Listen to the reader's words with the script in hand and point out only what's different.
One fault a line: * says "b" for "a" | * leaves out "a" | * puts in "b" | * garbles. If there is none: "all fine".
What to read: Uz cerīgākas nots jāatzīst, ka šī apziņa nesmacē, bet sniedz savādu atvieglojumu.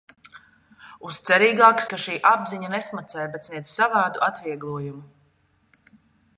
* leaves out "nots jāatzīst"